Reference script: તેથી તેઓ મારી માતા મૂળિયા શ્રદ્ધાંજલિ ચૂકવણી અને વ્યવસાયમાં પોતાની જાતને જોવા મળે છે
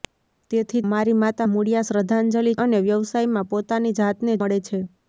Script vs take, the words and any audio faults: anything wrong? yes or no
yes